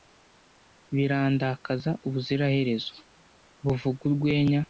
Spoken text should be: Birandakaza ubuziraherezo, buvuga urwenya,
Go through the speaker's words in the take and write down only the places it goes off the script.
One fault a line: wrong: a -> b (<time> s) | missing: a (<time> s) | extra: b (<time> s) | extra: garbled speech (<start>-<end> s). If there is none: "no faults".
no faults